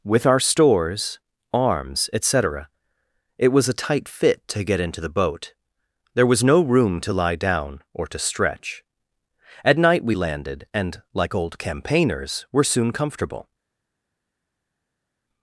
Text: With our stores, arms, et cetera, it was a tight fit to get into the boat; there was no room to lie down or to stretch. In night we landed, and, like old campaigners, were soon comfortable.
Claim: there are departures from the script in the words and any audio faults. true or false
true